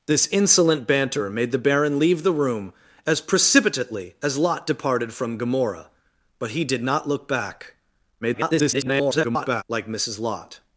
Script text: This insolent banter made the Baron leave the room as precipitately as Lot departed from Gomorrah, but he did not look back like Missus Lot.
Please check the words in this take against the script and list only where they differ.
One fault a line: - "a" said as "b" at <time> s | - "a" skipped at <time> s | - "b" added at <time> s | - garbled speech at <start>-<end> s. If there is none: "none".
- garbled speech at 8.2-9.6 s